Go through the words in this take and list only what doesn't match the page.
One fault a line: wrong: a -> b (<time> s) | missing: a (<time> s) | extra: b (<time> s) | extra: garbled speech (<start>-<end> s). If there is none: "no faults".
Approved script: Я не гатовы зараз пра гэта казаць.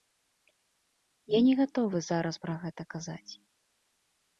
no faults